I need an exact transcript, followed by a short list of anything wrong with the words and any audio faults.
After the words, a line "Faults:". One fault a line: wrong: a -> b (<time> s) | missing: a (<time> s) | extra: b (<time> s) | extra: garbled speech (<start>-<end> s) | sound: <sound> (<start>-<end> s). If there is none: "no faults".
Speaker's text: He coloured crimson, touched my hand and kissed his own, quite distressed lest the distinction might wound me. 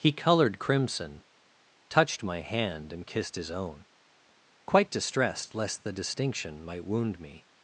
He coloured crimson, touched my hand and kissed his own, quite distressed lest the distinction might wound me.
Faults:
no faults